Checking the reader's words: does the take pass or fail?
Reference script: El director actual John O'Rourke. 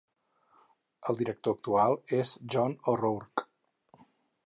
fail